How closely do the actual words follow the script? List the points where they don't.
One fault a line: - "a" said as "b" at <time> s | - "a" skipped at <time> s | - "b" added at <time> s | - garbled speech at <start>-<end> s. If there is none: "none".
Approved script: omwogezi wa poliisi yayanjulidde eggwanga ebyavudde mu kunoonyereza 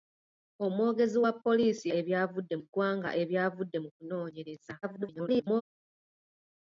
- "yayanjulidde" said as "ebyavudde" at 2.0 s
- garbled speech at 4.8-5.6 s